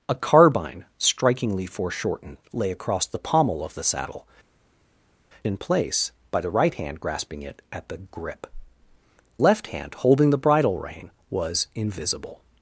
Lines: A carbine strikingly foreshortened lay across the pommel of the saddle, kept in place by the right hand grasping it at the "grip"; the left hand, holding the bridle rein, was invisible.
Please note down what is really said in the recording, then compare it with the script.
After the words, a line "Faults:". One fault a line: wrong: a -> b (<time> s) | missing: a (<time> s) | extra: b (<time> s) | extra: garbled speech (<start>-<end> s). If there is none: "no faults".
A carbine strikingly foreshortened lay across the pommel of the saddle, in place by the right hand grasping it at the "grip"; left hand, holding the bridle rein, was invisible.
Faults:
missing: kept (4.3 s)
missing: the (8.5 s)